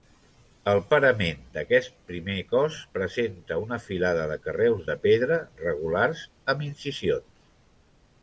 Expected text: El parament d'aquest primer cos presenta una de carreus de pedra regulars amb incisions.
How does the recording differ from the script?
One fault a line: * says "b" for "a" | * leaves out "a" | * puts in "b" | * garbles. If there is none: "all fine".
* puts in "filada"